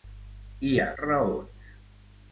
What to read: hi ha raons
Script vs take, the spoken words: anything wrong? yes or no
no